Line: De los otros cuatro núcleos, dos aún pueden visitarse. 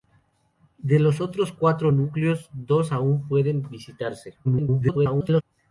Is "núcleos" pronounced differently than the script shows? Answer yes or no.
no